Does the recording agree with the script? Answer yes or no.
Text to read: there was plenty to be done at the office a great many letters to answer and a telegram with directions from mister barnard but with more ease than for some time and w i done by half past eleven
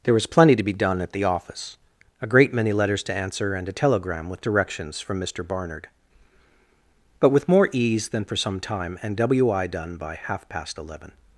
yes